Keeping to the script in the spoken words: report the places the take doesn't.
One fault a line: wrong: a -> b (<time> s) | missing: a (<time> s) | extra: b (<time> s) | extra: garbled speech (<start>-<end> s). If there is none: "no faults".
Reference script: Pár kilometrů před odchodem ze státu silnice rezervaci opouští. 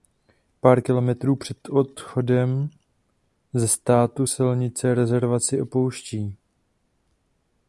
no faults